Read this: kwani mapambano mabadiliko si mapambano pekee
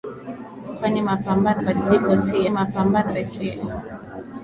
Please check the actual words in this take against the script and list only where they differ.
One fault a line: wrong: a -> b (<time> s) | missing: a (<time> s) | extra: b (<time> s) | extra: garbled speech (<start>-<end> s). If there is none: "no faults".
no faults